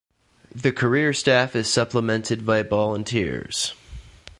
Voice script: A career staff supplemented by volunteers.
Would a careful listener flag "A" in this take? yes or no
yes